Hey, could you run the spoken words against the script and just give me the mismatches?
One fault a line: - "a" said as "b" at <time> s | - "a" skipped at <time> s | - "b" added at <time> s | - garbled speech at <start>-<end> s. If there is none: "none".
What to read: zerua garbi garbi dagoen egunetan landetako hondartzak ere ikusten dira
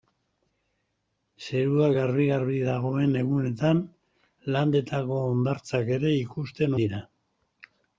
none